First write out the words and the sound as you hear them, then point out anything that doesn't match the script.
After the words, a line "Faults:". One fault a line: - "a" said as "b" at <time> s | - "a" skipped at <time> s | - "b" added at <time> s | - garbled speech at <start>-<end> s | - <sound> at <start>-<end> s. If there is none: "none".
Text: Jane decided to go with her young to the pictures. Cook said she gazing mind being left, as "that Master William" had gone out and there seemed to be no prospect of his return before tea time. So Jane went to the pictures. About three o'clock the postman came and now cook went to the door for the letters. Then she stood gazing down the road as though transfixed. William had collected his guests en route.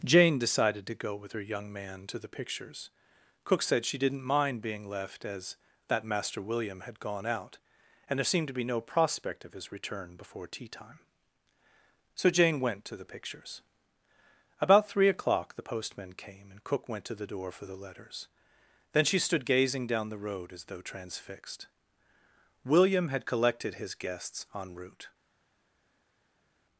Jane decided to go with her young man to the pictures. Cook said she didn't mind being left, as "that Master William" had gone out and there seemed to be no prospect of his return before tea time. So Jane went to the pictures. About three o'clock the postman came and cook went to the door for the letters. Then she stood gazing down the road as though transfixed. William had collected his guests en route.
Faults:
- "man" added at 1.7 s
- "gazing" said as "didn't" at 4.0 s
- "now" skipped at 16.6 s